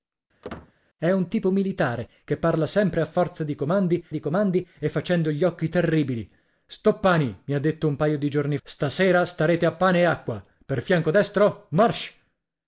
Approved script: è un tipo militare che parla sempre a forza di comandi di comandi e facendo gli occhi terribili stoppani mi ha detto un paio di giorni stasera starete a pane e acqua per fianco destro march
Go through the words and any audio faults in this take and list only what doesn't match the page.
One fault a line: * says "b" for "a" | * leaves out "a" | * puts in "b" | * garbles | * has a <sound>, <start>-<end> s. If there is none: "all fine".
* has a squeak, 0.4-0.7 s